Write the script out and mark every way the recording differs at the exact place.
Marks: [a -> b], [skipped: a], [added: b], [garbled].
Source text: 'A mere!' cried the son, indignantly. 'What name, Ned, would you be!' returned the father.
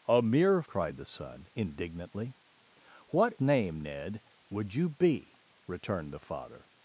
'A mere!' cried the son, indignantly. 'What name, Ned, would you be!' returned the father.